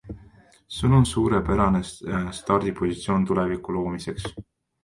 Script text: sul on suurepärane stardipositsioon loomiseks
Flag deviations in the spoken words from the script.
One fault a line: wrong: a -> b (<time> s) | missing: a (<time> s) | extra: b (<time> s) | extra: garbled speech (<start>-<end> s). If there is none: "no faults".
extra: tuleviku (3.2 s)